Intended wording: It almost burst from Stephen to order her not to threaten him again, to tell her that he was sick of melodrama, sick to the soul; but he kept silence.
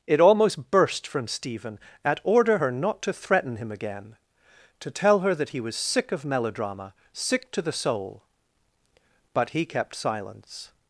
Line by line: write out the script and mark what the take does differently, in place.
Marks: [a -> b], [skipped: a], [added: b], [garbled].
It almost burst from Stephen [to -> at] order her not to threaten him again, to tell her that he was sick of melodrama, sick to the soul; but he kept silence.